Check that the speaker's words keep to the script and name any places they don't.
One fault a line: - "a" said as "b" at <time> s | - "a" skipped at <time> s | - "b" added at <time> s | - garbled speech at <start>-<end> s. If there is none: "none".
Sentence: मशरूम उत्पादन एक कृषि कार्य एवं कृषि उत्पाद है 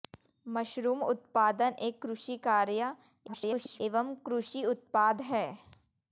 - garbled speech at 3.3-3.8 s